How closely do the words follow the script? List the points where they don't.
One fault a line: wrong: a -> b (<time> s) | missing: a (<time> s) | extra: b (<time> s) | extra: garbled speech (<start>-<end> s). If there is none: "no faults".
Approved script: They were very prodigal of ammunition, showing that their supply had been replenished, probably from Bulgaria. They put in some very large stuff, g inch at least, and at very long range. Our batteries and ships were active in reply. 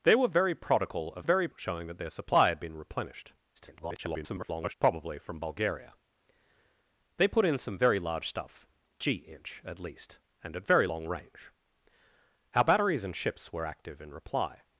wrong: ammunition -> very (1.2 s)
extra: garbled speech (3.5-4.7 s)